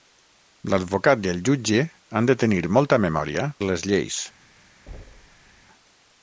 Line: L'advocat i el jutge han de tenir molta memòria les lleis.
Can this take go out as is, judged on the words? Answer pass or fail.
pass